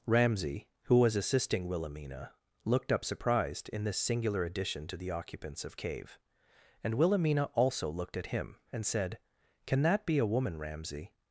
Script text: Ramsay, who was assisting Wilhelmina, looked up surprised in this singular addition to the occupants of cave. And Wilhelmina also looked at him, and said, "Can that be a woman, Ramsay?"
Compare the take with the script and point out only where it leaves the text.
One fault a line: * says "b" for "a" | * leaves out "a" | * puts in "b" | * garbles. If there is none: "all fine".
all fine